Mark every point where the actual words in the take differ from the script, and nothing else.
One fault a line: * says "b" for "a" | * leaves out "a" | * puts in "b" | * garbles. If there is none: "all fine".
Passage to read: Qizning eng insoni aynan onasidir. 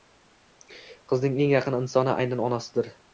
* puts in "yaqin"